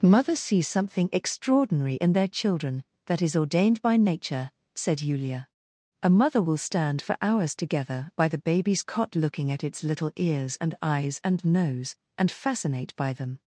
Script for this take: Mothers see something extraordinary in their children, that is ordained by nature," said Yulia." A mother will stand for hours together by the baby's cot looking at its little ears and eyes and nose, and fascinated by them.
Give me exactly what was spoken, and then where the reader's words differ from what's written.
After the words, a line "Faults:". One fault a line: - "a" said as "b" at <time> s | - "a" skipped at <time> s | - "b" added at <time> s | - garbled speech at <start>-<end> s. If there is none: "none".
Mothers see something extraordinary in their children, that is ordained by nature," said Yulia." A mother will stand for hours together by the baby's cot looking at its little ears and eyes and nose, and fascinate by them.
Faults:
- "fascinated" said as "fascinate" at 12.3 s